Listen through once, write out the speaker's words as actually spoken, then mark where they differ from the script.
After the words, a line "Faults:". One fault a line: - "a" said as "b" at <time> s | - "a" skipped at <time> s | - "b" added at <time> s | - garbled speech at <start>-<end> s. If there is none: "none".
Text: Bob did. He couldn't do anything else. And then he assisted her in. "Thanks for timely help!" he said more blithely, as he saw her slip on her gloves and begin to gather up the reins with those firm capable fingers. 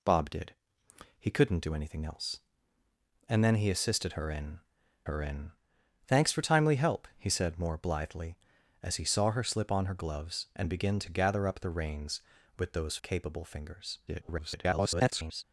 Bob did. He couldn't do anything else. And then he assisted her in her in. "Thanks for timely help!" he said more blithely, as he saw her slip on her gloves and begin to gather up the reins with those capable fingers. [garbled]
Faults:
- "her in" added at 5.0 s
- "firm" skipped at 13.0 s
- garbled speech at 14.1-15.4 s